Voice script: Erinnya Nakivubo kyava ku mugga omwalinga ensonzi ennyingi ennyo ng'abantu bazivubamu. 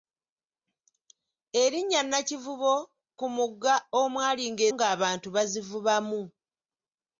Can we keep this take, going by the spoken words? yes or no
no